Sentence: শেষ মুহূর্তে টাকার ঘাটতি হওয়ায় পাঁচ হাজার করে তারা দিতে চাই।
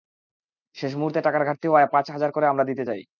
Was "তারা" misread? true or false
true